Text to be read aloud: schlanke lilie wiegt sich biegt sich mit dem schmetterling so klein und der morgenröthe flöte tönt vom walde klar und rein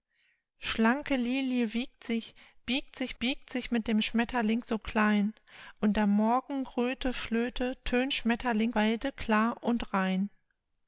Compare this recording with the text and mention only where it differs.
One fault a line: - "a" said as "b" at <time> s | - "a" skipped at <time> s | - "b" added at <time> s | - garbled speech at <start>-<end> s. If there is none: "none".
- "biegt sich" added at 3.2 s
- "vom" said as "schmetterling" at 8.1 s